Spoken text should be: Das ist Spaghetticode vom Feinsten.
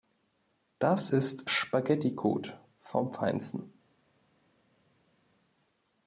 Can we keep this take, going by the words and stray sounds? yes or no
yes